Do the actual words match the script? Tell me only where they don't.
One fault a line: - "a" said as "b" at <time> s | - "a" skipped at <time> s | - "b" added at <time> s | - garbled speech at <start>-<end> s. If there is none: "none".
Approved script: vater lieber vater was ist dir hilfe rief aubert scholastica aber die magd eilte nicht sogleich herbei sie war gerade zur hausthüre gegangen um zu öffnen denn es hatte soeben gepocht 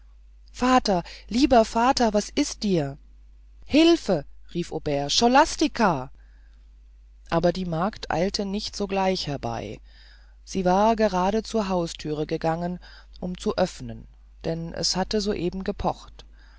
none